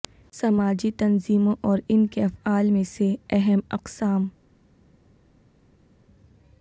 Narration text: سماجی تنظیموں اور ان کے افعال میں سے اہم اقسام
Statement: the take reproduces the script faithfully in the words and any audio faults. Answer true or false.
true